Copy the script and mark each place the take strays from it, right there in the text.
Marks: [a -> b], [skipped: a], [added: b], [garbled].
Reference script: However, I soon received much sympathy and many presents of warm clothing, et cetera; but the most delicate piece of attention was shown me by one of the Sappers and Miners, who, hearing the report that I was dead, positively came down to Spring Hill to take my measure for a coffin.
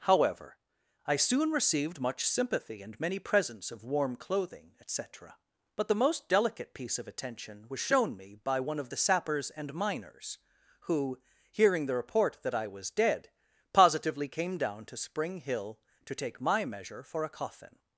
However, I soon received much sympathy and many presents of warm clothing, et cetera; but the most delicate piece of attention was shown me by one of the Sappers and Miners, who, hearing the report that I was dead, positively came down to Spring Hill to take my measure for a coffin.